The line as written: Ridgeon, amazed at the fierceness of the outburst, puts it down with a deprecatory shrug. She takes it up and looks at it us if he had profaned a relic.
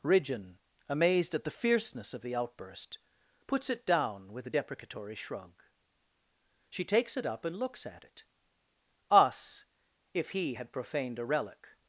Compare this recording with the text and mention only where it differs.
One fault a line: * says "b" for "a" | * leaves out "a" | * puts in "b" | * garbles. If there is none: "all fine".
all fine